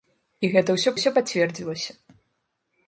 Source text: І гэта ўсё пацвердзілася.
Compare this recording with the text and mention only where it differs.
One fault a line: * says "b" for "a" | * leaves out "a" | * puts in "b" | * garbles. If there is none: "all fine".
* puts in "ўсё"